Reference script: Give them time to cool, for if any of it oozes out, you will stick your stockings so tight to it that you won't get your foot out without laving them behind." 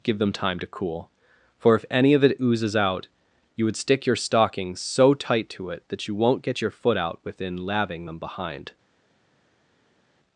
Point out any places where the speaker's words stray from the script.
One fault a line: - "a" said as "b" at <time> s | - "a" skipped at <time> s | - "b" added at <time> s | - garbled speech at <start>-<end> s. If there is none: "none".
- "will" said as "would" at 3.6 s
- "without" said as "within" at 7.2 s